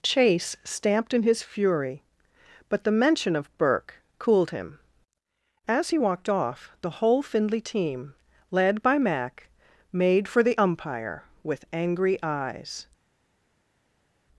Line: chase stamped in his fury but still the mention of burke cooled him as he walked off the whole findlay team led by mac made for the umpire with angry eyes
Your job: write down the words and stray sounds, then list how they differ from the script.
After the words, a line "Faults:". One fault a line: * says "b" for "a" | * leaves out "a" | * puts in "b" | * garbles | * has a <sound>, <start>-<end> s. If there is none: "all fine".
chase stamped in his fury but the mention of burke cooled him as he walked off the whole findlay team led by mac made for the umpire with angry eyes
Faults:
* leaves out "still"